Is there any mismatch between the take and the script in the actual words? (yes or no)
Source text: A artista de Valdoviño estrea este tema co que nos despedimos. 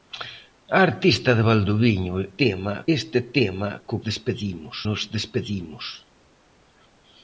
yes